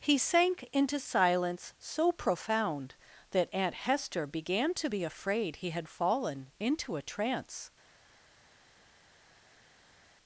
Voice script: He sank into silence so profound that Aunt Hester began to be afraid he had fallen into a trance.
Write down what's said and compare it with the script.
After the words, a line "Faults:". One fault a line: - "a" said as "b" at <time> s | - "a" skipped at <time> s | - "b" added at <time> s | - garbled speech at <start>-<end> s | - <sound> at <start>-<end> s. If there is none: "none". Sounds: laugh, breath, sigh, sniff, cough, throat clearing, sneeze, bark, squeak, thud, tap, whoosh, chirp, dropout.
He sank into silence so profound that Aunt Hester began to be afraid he had fallen into a trance.
Faults:
none